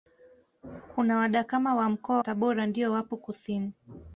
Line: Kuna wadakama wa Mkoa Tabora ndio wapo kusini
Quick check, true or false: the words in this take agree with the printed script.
true